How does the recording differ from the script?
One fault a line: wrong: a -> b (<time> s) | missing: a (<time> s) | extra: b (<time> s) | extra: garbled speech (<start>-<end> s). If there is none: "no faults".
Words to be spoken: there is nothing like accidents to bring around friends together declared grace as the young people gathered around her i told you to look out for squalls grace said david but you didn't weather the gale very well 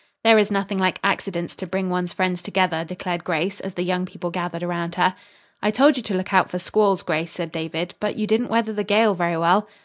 wrong: around -> one's (1.9 s)